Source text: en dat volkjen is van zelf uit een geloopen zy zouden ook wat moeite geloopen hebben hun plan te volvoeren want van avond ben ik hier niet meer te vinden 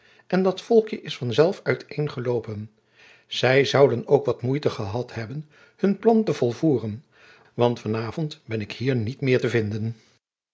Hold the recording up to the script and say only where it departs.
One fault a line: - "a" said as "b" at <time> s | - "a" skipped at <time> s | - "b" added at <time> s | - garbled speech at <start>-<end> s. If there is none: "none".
- "geloopen" said as "gehad" at 4.7 s